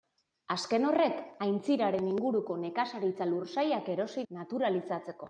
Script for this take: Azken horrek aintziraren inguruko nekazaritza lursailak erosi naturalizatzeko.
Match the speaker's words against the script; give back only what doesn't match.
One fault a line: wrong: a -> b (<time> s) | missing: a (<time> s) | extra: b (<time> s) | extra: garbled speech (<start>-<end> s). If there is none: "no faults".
no faults